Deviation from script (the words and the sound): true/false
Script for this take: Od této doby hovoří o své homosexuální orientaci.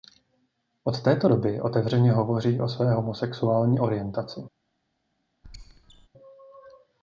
true